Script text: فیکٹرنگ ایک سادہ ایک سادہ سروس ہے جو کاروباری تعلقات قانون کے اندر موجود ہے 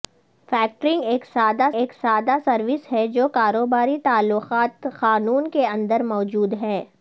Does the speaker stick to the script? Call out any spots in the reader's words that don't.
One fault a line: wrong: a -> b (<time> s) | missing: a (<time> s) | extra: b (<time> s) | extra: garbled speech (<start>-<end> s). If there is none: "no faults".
no faults